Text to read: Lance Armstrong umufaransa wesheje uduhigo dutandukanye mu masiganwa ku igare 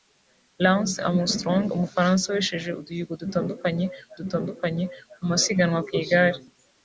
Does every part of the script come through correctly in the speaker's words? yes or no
no